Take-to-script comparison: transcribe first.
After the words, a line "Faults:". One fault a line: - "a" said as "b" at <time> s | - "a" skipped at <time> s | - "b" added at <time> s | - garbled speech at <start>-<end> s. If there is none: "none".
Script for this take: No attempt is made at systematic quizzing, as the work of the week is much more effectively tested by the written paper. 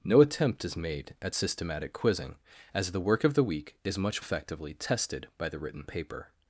No attempt is made at systematic quizzing, as the work of the week is much effectively tested by the written paper.
Faults:
- "more" skipped at 4.2 s